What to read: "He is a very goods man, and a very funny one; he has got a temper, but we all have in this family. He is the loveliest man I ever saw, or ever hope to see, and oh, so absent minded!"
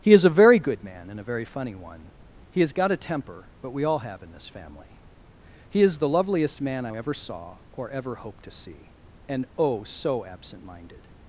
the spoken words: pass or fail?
fail